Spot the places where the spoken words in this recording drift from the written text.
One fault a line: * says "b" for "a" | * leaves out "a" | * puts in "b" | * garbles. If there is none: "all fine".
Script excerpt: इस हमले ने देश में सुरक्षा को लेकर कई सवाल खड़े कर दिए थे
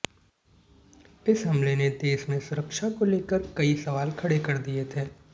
all fine